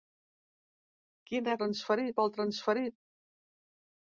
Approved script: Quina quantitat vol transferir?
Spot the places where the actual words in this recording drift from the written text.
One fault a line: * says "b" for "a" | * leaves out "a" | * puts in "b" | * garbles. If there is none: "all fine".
* says "transferir" for "quantitat"